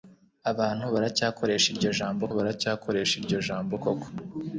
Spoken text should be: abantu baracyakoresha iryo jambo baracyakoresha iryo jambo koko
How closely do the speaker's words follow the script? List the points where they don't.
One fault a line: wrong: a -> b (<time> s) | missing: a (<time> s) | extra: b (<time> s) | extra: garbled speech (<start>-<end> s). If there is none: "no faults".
no faults